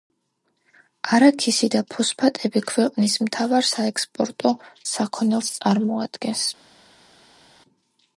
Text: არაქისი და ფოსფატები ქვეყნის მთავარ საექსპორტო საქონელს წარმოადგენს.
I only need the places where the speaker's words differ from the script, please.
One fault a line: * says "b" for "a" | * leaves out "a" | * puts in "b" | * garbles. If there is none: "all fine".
all fine